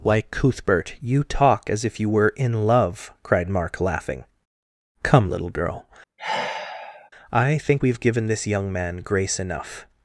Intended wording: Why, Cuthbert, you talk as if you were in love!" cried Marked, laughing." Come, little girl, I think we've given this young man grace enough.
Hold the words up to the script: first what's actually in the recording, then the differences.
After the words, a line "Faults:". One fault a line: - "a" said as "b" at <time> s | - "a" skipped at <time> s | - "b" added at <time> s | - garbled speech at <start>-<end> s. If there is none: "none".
Why, Cuthbert, you talk as if you were in love!" cried Mark, laughing." Come, little girl, I think we've given this young man grace enough.
Faults:
- "Marked" said as "Mark" at 3.5 s